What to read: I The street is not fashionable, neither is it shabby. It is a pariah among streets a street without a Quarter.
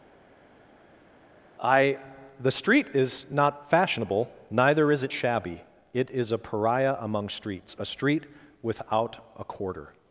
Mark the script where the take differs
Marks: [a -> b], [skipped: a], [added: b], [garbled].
I The street is not fashionable, neither is it shabby. It is a pariah among streets a street without a Quarter.